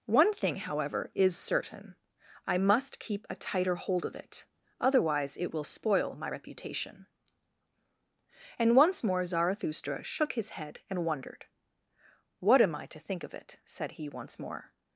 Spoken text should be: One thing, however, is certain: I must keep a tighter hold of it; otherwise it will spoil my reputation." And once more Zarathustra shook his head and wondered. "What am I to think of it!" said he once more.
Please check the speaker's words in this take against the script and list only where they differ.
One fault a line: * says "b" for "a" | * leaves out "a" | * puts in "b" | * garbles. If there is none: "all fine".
all fine